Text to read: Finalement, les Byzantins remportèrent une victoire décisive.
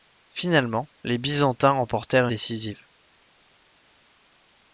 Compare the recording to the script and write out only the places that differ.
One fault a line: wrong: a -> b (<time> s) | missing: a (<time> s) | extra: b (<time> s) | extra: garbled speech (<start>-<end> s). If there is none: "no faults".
missing: une victoire (2.3 s)